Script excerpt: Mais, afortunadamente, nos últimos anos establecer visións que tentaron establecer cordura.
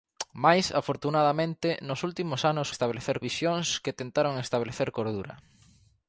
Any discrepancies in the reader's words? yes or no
no